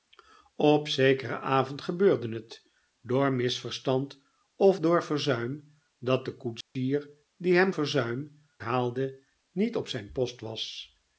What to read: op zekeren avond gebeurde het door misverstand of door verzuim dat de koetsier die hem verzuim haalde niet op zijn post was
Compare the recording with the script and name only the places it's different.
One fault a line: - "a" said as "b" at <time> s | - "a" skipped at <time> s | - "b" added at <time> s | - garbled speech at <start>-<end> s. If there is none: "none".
none